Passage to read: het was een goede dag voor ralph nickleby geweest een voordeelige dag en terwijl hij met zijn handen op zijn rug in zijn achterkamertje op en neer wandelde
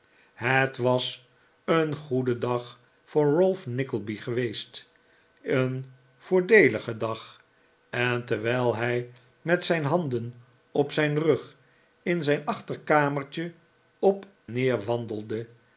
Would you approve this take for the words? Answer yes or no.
no